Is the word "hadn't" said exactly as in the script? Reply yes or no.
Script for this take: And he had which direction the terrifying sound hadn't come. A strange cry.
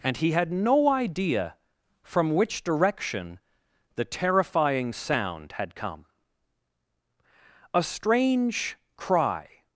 no